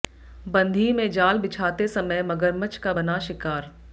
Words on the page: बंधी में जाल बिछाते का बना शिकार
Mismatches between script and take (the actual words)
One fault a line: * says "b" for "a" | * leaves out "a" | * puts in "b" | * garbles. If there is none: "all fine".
* puts in "समय मगरमच्छ"